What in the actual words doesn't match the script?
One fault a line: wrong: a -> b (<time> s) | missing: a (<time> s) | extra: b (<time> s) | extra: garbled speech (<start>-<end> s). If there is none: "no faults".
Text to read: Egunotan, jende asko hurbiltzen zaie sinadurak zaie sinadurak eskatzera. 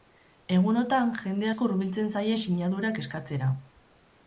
missing: zaie sinadurak (3.0 s)